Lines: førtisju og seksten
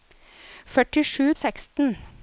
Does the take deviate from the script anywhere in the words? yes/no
no